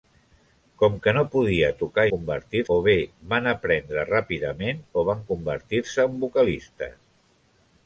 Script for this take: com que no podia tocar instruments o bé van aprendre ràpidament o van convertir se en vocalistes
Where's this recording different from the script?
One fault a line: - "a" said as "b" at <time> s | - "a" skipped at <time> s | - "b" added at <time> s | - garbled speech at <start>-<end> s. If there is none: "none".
- "instruments" said as "convertir" at 2.1 s